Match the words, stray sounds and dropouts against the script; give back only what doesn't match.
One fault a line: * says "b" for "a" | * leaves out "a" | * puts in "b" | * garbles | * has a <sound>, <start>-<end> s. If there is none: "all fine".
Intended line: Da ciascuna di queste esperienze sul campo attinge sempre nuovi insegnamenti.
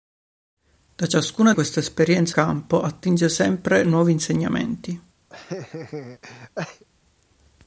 * leaves out "di"
* leaves out "sul"
* has a laugh, 5.3-6.8 s